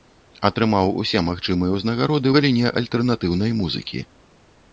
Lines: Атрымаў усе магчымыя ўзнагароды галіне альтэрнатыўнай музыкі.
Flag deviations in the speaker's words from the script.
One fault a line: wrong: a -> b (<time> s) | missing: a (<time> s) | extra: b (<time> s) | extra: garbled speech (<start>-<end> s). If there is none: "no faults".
no faults